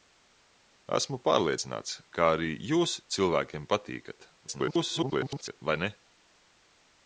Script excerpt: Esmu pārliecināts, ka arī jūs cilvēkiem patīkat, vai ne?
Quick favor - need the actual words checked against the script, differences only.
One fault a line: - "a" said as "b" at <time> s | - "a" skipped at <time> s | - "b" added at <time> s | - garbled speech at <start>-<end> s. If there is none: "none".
- garbled speech at 4.5-5.6 s